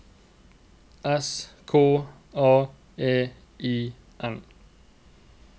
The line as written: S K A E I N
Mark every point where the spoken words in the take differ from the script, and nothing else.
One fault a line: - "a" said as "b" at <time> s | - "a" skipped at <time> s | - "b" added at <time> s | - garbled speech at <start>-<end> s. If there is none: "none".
none